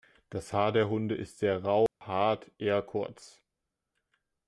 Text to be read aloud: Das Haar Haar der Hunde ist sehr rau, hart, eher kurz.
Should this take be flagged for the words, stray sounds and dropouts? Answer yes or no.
yes